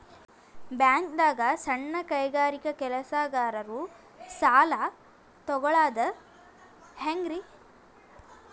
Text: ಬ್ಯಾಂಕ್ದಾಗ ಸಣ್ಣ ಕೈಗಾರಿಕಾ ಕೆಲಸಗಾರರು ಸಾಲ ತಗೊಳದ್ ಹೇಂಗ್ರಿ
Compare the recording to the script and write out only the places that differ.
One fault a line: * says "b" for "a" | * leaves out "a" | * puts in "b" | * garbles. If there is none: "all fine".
all fine